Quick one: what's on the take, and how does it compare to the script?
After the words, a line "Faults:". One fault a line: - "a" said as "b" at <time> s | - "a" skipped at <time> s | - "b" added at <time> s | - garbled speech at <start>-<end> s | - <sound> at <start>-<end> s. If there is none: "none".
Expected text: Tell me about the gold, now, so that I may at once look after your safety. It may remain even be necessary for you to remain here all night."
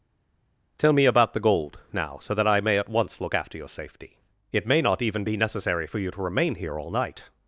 Tell me about the gold, now, so that I may at once look after your safety. It may not even be necessary for you to remain here all night."
Faults:
- "remain" said as "not" at 4.8 s